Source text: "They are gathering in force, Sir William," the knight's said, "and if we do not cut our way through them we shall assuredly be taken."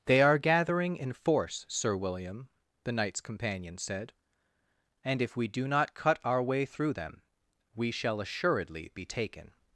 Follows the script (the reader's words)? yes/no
no